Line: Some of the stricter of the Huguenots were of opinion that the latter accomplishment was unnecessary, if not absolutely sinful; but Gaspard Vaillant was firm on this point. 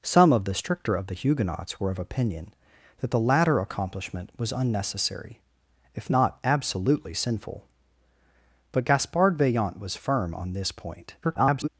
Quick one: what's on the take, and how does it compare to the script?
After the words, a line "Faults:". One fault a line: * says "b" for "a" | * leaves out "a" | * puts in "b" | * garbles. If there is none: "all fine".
Some of the stricter of the Huguenots were of opinion that the latter accomplishment was unnecessary, if not absolutely sinful; but Gaspard Vaillant was firm on this point. [garbled]
Faults:
* garbles